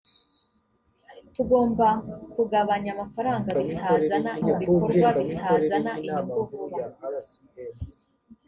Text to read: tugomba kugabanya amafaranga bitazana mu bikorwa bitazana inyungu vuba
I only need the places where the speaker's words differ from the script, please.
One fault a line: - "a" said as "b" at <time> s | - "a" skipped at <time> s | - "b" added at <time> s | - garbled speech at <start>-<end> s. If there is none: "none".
none